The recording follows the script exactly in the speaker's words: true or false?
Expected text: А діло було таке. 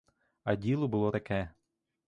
true